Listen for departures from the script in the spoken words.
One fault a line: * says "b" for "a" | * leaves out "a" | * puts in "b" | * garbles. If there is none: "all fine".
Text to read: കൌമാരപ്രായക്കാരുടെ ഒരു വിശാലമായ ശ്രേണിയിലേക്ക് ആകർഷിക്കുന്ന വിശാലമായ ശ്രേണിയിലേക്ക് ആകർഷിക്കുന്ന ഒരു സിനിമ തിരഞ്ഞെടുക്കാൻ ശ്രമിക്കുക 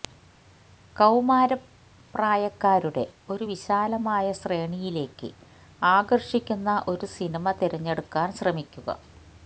* leaves out "വിശാലമായ ശ്രേണിയിലേക്ക് ആകർഷിക്കുന്ന"